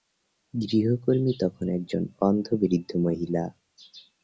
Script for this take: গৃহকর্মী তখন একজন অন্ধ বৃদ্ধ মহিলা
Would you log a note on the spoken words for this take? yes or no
no